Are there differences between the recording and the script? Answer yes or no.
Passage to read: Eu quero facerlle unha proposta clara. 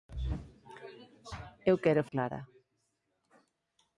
yes